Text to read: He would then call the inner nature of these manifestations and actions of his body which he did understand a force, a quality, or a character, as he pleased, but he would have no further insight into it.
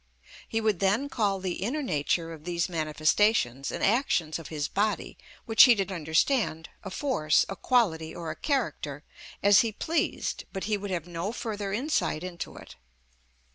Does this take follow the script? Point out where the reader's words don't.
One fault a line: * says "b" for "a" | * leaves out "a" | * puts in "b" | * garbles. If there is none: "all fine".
all fine